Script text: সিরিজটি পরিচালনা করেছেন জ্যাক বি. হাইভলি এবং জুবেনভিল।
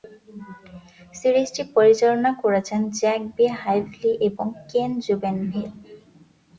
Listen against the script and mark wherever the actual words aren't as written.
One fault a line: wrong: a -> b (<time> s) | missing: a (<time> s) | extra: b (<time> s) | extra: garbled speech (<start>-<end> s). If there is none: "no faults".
extra: কেন (4.7 s)